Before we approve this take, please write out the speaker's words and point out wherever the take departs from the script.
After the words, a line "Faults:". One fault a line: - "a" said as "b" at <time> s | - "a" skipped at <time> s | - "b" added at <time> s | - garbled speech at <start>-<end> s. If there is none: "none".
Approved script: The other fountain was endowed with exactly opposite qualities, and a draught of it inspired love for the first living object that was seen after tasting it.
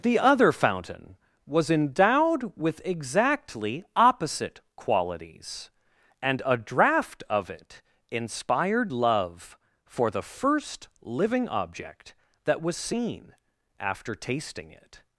The other fountain was endowed with exactly opposite qualities, and a draught of it inspired love for the first living object that was seen after tasting it.
Faults:
none